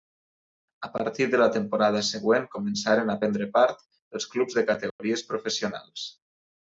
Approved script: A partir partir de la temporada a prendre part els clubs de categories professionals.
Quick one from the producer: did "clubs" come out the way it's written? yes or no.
yes